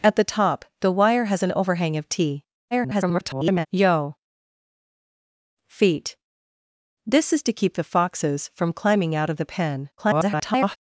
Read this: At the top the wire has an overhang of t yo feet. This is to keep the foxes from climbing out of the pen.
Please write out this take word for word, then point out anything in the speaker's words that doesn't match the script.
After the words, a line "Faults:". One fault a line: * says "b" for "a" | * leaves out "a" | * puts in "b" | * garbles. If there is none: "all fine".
At the top the wire has an overhang of t [garbled] yo feet. This is to keep the foxes from climbing out of the pen. [garbled]
Faults:
* garbles
* garbles